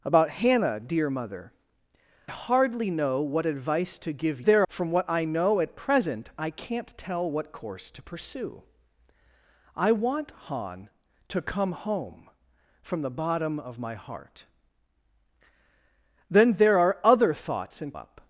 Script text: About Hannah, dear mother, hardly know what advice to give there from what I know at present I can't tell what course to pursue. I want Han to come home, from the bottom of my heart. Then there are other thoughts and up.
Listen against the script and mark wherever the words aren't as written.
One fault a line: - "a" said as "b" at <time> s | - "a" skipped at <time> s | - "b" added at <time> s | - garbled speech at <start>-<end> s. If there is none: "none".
none